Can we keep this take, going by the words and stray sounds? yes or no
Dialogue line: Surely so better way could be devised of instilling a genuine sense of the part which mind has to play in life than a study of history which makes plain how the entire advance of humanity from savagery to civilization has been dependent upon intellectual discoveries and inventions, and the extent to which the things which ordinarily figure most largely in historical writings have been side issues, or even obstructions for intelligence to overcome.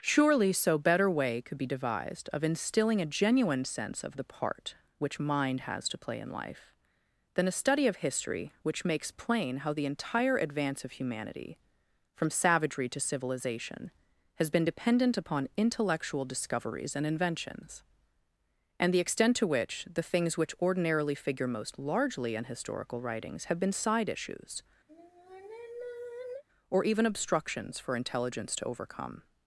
no